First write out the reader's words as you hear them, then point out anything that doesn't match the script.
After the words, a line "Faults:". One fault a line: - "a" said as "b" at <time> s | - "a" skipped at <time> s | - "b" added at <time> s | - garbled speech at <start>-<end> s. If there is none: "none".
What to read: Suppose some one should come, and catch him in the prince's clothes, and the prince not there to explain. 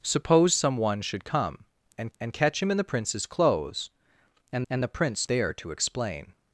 Suppose some one should come, and and catch him in the prince's clothes, and and the prince there to explain.
Faults:
- "and" added at 2.2 s
- "and" added at 4.7 s
- "not" skipped at 5.3 s